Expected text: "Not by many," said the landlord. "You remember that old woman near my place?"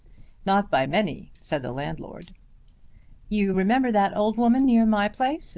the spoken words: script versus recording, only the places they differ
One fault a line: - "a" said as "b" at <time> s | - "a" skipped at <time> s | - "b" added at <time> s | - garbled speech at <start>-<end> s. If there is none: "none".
none